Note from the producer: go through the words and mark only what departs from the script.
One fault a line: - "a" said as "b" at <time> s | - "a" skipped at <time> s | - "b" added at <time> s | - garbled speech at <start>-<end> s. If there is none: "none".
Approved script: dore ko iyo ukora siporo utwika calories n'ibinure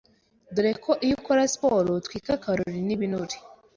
none